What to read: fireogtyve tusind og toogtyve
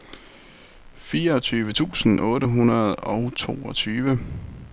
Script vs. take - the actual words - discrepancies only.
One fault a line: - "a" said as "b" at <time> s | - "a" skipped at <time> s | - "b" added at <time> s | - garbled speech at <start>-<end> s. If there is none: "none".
- "otte hundrede" added at 2.2 s